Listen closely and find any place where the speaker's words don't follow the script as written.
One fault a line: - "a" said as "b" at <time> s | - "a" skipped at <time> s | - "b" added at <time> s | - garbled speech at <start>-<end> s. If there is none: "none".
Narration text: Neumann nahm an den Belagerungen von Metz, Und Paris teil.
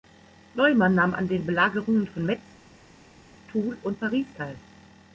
- "Toul" added at 3.5 s